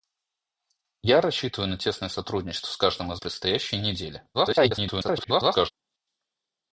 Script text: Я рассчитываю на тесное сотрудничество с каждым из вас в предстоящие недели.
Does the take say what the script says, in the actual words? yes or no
no